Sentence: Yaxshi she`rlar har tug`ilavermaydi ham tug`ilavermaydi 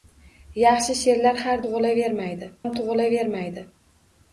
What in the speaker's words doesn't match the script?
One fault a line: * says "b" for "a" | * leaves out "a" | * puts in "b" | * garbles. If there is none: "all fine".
all fine